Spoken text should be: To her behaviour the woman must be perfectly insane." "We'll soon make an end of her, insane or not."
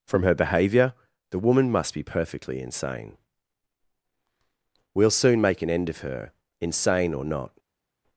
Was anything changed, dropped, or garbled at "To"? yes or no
yes